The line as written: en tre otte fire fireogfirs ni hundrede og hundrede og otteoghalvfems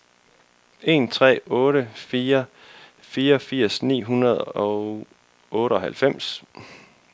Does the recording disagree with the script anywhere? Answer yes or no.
yes